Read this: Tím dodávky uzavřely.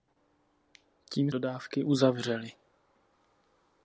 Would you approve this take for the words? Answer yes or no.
yes